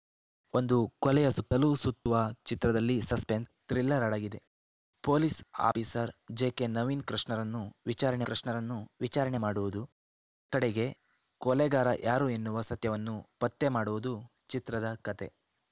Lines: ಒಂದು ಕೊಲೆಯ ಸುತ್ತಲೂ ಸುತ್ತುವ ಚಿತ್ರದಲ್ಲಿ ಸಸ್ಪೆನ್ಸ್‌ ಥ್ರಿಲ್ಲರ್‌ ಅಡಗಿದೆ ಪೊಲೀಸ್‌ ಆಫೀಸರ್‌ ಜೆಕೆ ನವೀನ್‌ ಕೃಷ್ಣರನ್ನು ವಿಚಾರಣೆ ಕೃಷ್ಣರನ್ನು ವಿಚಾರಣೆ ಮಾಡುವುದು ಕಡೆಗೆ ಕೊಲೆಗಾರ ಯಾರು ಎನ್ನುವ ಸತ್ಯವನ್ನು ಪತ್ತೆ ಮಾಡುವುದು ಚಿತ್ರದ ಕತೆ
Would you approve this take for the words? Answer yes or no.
yes